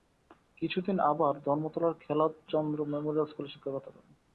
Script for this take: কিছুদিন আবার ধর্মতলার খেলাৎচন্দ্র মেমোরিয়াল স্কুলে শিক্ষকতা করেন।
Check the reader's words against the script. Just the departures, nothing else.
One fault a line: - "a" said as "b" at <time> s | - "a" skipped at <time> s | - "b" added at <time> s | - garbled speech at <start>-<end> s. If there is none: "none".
none